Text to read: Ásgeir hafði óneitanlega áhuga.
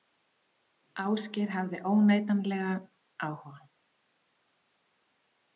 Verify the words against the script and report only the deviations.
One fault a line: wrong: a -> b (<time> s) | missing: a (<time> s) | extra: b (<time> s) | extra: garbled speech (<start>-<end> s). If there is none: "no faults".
no faults